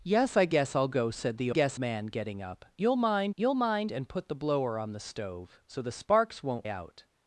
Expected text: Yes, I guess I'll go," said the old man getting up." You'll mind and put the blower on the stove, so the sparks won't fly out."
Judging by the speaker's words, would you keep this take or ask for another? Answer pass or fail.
fail